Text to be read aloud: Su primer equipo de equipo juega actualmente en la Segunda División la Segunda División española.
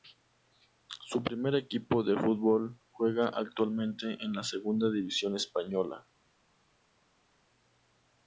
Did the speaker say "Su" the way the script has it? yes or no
yes